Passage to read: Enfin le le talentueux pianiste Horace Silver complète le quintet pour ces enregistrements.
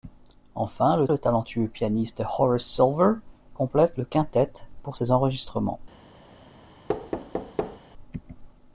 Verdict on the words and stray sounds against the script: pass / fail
fail